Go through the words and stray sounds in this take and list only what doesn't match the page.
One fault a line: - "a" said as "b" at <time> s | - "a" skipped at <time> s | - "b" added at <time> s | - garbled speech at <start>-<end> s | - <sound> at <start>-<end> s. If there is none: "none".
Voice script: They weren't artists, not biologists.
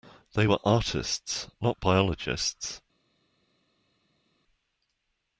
- "weren't" said as "were" at 0.4 s